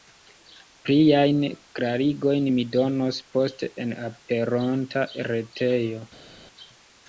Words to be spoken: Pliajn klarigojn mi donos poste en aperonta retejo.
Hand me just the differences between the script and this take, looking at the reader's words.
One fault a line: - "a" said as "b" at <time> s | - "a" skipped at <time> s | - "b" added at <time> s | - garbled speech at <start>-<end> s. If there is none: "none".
none